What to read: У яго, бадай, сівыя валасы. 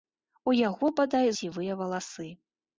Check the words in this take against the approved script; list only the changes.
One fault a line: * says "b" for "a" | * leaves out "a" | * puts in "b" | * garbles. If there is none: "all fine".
all fine